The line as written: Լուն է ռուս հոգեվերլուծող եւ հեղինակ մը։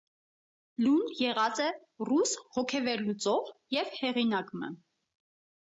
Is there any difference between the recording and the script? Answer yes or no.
yes